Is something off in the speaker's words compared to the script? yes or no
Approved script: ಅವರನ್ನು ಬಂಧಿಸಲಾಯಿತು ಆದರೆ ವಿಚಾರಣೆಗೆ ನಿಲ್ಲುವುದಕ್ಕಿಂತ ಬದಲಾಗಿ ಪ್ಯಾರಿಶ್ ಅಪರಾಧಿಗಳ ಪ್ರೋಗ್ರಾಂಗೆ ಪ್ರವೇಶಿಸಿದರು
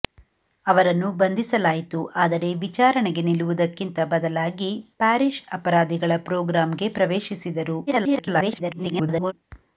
yes